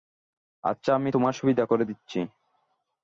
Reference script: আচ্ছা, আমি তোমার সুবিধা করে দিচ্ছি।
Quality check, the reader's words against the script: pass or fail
pass